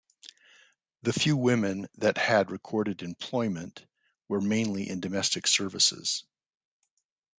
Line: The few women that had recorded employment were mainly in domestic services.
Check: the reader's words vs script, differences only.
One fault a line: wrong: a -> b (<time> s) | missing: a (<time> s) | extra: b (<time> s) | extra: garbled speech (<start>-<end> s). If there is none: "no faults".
no faults